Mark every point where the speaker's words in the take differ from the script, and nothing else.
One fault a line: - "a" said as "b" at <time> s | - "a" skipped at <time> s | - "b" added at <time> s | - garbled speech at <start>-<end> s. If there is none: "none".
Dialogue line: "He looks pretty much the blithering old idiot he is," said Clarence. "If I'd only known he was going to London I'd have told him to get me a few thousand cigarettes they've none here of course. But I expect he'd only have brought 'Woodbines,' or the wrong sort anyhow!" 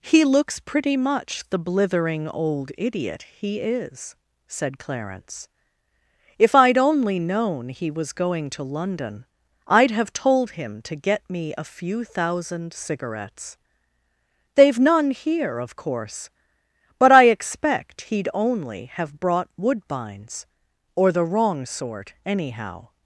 none